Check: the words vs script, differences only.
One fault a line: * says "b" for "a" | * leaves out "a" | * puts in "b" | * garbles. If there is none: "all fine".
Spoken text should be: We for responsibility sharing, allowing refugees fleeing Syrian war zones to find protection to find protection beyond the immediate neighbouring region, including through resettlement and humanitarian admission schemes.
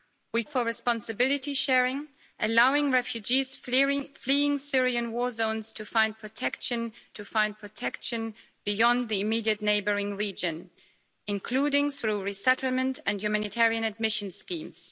all fine